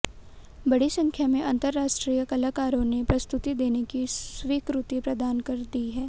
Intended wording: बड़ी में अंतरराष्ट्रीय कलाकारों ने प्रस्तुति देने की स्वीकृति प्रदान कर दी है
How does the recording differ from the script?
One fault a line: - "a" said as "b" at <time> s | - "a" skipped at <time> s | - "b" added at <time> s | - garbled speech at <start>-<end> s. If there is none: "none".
- "संख्या" added at 0.9 s